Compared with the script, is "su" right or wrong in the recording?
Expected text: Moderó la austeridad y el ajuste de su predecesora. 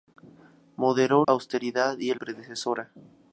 wrong